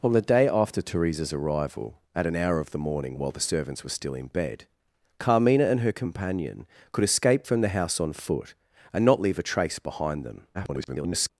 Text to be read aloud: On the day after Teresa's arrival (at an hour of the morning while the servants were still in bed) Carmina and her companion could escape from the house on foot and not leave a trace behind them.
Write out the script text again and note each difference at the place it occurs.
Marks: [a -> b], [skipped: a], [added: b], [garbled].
On the day after Teresa's arrival (at an hour of the morning while the servants were still in bed) Carmina and her companion could escape from the house on foot and not leave a trace behind them. [garbled]